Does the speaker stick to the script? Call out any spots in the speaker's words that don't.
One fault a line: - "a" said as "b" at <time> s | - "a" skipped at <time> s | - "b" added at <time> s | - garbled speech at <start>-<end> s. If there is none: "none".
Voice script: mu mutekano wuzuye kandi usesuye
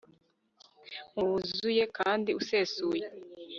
- "mutekano" skipped at 1.2 s